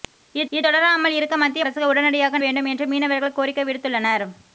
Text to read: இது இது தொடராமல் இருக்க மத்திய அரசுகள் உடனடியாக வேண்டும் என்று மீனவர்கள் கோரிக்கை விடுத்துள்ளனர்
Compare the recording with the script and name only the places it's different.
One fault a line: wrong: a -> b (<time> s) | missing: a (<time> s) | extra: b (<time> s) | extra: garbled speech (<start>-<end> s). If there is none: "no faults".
no faults